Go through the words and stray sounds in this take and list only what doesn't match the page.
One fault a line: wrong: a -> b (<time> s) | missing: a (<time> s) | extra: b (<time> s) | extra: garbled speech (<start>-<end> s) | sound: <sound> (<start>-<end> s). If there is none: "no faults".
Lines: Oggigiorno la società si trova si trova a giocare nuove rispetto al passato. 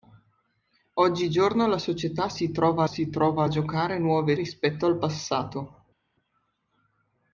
no faults